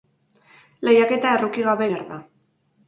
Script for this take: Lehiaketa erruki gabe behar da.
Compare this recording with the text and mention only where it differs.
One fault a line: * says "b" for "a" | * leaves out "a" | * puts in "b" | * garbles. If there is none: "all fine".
all fine